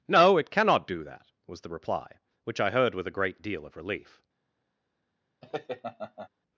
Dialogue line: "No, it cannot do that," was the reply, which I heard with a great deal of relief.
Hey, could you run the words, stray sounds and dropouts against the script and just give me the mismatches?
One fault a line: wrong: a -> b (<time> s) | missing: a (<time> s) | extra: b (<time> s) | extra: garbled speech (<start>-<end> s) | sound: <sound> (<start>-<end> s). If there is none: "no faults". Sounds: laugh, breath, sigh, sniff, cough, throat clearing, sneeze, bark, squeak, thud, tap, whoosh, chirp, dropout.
sound: laugh (5.4-6.3 s)